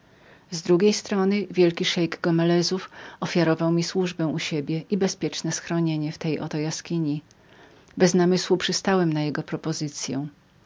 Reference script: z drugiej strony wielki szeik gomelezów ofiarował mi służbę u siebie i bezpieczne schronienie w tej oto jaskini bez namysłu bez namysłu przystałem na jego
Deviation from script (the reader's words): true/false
true